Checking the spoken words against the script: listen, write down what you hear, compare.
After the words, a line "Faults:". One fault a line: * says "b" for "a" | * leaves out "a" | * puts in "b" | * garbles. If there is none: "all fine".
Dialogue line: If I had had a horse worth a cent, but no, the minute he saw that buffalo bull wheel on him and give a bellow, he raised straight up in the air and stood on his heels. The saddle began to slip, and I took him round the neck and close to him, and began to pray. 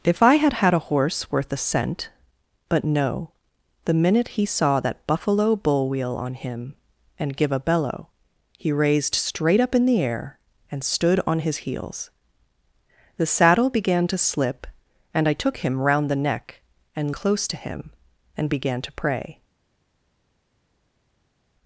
If I had had a horse worth a cent, but no, the minute he saw that buffalo bull wheel on him and give a bellow, he raised straight up in the air and stood on his heels. The saddle began to slip, and I took him round the neck and close to him, and began to pray.
Faults:
all fine